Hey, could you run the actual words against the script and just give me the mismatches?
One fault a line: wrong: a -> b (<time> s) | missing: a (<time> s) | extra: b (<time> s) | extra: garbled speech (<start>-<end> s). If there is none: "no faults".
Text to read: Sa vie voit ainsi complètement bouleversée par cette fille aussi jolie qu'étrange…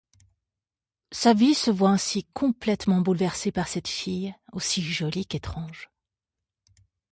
extra: se (1.5 s)